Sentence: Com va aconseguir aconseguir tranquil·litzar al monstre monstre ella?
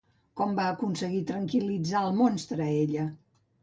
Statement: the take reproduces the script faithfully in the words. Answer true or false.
false